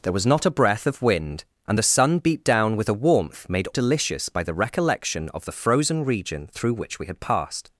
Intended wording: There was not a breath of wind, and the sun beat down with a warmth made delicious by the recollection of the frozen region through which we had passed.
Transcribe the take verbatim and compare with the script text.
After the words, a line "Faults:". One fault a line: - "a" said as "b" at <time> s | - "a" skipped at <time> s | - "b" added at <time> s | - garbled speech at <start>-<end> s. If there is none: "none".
There was not a breath of wind, and the sun beat down with a warmth made delicious by the recollection of the frozen region through which we had passed.
Faults:
none